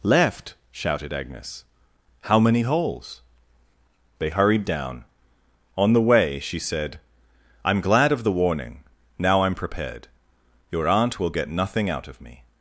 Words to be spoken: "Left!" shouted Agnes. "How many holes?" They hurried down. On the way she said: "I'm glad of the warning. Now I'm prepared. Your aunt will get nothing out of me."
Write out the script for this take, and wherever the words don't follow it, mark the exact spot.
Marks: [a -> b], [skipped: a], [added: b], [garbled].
"Left!" shouted Agnes. "How many holes?" They hurried down. On the way she said: "I'm glad of the warning. Now I'm prepared. Your aunt will get nothing out of me."